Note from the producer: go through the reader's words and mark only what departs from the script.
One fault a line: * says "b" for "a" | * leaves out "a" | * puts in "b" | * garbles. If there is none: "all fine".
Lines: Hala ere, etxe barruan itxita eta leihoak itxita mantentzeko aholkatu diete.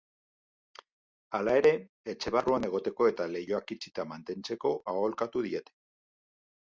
* says "egoteko" for "itxita"